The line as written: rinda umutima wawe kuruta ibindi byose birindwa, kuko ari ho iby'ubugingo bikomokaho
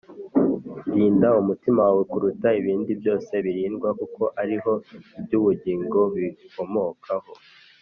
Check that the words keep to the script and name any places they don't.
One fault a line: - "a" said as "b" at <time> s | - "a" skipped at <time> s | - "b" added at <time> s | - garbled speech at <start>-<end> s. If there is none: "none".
none